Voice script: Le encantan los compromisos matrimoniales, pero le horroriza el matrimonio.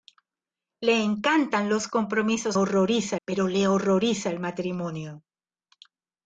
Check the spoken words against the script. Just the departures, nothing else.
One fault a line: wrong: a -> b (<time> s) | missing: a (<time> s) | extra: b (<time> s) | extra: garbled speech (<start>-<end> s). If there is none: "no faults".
wrong: matrimoniales -> horroriza (2.5 s)